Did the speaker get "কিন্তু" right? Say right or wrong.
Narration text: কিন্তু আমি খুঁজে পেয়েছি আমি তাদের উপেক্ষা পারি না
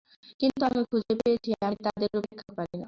right